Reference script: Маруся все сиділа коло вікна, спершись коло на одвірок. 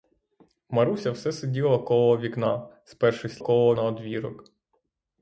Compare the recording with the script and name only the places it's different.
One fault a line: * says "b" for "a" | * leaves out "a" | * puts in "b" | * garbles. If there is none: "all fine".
all fine